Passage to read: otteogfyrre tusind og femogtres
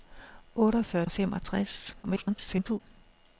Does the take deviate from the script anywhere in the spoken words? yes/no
yes